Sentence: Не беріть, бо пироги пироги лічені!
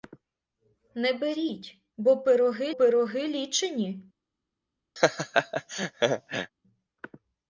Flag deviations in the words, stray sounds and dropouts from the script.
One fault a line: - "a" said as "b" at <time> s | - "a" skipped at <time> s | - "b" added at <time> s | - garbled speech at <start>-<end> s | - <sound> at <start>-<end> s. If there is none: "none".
- laugh at 5.0-6.5 s